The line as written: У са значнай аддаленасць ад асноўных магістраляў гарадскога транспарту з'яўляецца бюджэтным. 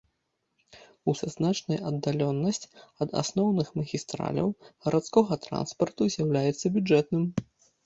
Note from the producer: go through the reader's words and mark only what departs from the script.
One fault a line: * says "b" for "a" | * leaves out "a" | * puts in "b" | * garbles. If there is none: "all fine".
all fine